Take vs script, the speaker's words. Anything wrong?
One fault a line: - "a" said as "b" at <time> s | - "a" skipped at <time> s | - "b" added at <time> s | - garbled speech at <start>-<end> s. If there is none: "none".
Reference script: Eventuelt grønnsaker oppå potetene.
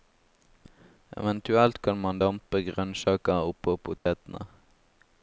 - "kan man dampe" added at 1.9 s